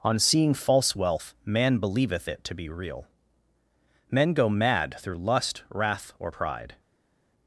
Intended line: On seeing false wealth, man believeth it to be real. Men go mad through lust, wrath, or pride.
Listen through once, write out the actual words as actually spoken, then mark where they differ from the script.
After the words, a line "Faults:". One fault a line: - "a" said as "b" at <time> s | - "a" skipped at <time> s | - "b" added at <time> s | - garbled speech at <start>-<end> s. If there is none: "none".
On seeing false wealth, man believeth it to be real. Men go mad through lust, wrath, or pride.
Faults:
none